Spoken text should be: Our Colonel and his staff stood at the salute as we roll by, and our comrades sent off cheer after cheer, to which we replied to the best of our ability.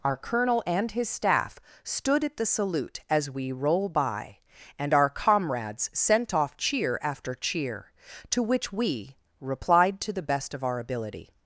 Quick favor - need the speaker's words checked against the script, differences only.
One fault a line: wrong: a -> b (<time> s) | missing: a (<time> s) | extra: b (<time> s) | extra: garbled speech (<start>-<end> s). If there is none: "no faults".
no faults